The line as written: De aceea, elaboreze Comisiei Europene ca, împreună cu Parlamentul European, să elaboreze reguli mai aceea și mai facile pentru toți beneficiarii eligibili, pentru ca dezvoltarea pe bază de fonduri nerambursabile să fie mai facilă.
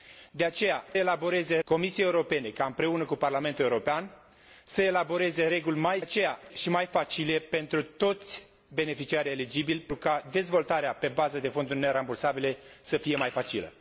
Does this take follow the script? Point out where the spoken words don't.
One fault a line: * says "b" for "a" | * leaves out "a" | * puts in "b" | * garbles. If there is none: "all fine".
all fine